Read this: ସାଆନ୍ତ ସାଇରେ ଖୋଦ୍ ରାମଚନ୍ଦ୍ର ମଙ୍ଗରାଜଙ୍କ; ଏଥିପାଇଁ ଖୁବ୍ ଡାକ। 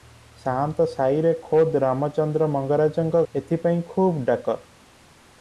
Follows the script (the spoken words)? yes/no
yes